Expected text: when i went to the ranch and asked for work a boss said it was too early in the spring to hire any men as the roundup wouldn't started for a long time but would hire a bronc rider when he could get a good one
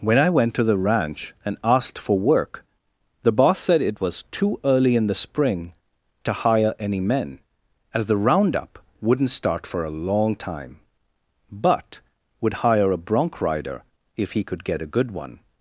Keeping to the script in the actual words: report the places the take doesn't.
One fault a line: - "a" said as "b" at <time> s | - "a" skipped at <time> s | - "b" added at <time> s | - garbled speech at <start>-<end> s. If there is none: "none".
- "a" said as "the" at 3.2 s
- "started" said as "start" at 9.3 s
- "when" said as "if" at 14.2 s